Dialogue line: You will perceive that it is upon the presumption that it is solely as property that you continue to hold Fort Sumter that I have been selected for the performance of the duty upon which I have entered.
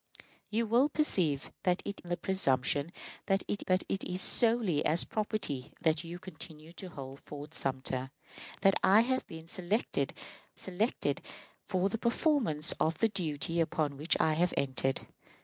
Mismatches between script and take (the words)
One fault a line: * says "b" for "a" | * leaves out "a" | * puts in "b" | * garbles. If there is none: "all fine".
* leaves out "is upon"
* puts in "that it"
* puts in "selected"